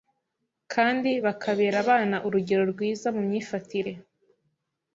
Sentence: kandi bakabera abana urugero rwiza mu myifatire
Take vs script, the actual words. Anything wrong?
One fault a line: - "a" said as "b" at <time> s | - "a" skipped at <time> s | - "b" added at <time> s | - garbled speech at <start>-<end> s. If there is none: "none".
none